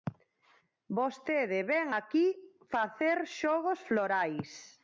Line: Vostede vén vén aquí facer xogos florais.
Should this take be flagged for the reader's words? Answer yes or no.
yes